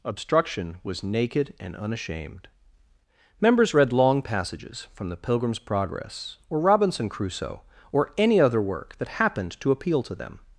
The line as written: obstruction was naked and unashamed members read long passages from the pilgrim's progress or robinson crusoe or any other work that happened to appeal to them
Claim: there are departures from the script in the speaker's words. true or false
false